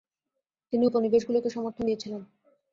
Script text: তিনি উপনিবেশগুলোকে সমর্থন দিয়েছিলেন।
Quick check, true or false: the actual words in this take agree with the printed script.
true